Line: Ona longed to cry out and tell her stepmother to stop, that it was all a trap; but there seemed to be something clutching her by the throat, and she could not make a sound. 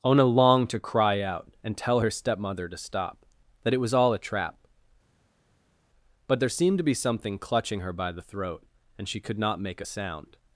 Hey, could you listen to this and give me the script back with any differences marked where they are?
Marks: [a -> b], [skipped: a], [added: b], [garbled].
Ona longed to cry out and tell her stepmother to stop, that it was all a trap; but there seemed to be something clutching her by the throat, and she could not make a sound.